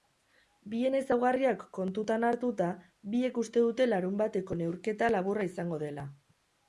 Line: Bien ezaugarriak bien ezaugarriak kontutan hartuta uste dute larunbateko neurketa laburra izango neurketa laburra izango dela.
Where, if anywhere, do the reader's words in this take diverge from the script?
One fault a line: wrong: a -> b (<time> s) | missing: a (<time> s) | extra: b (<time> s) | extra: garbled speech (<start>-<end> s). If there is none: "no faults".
missing: bien ezaugarriak (1.6 s)
extra: biek (3.2 s)
missing: neurketa laburra izango (5.8 s)